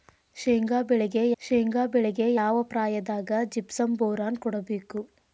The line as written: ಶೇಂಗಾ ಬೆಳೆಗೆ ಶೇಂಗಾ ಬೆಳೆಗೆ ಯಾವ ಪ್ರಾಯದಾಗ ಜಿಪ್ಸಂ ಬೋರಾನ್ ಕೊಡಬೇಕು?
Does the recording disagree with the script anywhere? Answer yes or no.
no